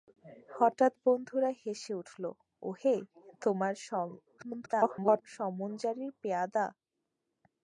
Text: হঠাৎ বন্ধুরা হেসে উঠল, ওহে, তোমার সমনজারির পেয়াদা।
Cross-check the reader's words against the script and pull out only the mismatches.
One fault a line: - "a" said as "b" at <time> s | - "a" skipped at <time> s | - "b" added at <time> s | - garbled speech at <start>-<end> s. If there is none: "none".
- garbled speech at 4.4-5.2 s